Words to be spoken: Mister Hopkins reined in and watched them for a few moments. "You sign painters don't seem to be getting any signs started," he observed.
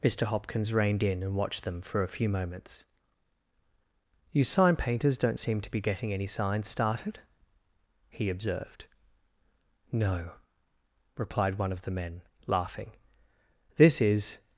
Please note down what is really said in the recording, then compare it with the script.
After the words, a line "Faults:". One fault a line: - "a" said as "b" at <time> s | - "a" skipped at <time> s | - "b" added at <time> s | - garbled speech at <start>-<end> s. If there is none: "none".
Mister Hopkins reined in and watched them for a few moments. "You sign painters don't seem to be getting any signs started," he observed. "No," replied one of the men, laughing. "This is
Faults:
- "No replied one of the men laughing This is" added at 9.9 s